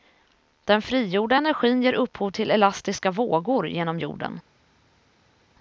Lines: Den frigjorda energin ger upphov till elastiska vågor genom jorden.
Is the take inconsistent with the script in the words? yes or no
no